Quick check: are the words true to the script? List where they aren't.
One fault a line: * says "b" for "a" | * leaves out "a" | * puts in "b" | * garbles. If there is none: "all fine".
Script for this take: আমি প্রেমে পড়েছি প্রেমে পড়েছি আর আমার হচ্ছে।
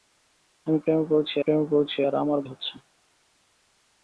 all fine